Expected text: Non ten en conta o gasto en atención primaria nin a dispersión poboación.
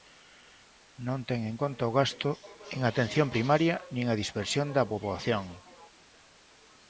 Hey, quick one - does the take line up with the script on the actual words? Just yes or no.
no